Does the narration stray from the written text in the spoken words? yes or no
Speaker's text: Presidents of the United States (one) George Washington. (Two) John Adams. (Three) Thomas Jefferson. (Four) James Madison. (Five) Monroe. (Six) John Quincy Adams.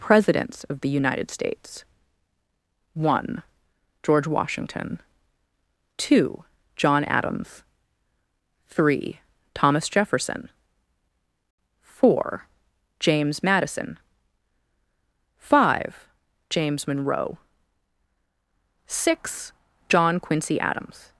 yes